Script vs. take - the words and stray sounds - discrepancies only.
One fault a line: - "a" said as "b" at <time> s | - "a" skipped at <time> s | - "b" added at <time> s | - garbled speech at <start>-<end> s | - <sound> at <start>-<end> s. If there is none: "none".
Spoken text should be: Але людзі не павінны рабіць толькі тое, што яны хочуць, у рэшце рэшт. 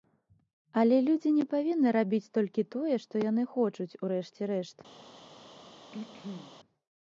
- throat clearing at 5.9-6.6 s